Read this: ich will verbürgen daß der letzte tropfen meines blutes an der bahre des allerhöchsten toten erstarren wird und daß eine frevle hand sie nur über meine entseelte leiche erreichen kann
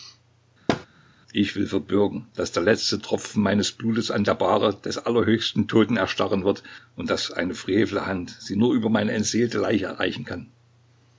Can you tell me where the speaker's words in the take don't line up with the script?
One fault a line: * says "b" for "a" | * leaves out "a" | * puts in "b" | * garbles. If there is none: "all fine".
all fine